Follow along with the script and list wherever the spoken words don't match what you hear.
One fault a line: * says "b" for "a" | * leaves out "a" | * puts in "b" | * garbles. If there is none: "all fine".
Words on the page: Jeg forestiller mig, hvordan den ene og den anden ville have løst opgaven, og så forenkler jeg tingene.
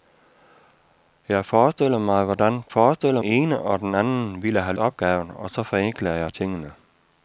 * says "forestiller" for "den"
* leaves out "løst"